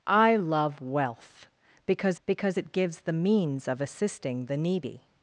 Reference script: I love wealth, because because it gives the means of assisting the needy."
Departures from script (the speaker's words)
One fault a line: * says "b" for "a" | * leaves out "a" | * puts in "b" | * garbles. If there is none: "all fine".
all fine